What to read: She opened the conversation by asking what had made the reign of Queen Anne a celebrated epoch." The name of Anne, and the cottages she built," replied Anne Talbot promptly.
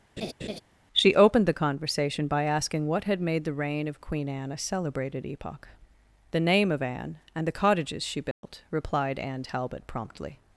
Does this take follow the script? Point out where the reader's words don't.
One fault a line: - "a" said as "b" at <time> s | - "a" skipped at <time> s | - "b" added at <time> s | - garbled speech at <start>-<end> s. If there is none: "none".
none